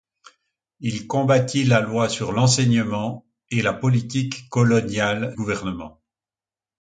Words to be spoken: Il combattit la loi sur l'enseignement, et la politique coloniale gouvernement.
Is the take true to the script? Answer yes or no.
yes